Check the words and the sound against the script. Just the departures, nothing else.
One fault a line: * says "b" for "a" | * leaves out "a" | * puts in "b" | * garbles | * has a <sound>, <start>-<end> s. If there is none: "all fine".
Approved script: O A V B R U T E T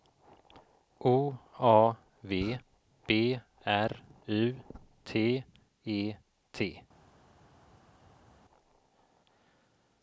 all fine